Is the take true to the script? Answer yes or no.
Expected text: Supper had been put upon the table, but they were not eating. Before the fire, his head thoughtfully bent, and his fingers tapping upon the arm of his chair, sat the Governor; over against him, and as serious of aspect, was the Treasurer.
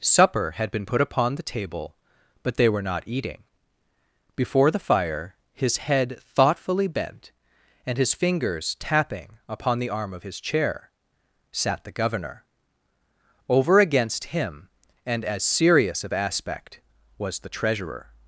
yes